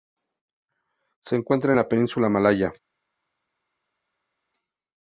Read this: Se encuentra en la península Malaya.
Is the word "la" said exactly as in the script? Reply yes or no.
yes